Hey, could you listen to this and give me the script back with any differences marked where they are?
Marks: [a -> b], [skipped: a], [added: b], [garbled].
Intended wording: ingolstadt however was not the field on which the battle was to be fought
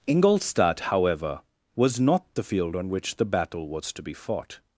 ingolstadt however was not the field on which the battle was to be fought